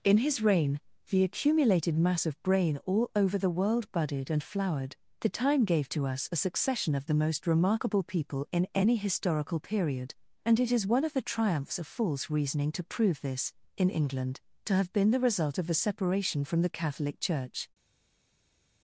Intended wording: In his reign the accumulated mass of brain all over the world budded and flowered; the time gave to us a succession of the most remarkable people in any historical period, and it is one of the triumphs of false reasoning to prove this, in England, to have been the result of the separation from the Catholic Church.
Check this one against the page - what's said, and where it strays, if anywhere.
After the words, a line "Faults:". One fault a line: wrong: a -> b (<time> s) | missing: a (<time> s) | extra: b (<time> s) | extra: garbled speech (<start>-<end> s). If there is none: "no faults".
In his reign the accumulated mass of brain all over the world budded and flowered; the time gave to us a succession of the most remarkable people in any historical period, and it is one of the triumphs of false reasoning to prove this, in England, to have been the result of a separation from the Catholic Church.
Faults:
wrong: the -> a (15.7 s)